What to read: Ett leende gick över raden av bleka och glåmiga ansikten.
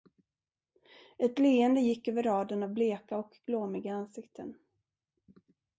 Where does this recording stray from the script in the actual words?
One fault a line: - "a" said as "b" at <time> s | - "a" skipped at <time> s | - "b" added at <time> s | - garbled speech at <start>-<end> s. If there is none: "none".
none